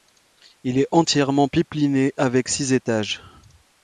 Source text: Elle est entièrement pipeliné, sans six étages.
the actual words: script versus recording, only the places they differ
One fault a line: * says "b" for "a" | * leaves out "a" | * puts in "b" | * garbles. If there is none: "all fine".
* says "Il" for "Elle"
* says "avec" for "sans"